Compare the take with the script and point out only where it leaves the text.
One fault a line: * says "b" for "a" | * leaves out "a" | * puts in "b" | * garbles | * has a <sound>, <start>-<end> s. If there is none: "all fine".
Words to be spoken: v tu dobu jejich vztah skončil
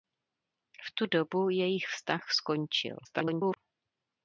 * garbles